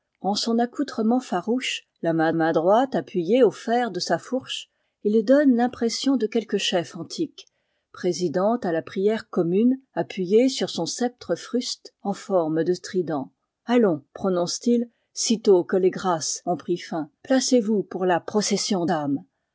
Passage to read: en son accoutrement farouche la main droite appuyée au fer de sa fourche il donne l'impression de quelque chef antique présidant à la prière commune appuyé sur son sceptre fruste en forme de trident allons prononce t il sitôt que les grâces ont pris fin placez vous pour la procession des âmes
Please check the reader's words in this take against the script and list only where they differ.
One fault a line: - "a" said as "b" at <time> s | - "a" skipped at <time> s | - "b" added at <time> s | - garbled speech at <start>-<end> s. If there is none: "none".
- "main" added at 2.3 s
- "des" skipped at 18.8 s